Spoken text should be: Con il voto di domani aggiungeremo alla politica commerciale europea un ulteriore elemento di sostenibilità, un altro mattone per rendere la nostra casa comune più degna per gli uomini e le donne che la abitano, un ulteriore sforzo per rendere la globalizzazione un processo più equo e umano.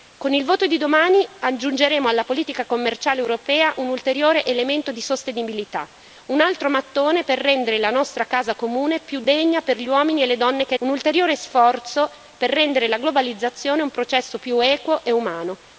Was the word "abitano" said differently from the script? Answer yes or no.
yes